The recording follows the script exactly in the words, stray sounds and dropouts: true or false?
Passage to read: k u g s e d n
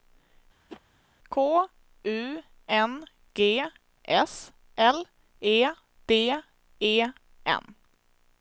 false